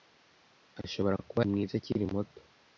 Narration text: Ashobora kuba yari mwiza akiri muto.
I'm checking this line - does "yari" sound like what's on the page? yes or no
no